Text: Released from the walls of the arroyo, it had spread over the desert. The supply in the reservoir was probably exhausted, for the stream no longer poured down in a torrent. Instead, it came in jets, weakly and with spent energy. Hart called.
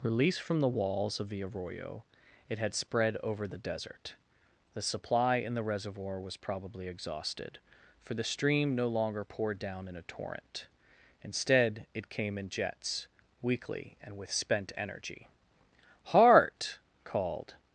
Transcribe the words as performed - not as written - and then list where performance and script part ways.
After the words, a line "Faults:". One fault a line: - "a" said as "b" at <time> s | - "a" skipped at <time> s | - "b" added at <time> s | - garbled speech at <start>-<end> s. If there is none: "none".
Released from the walls of the arroyo, it had spread over the desert. The supply in the reservoir was probably exhausted, for the stream no longer poured down in a torrent. Instead, it came in jets, weakly and with spent energy. Hart called.
Faults:
none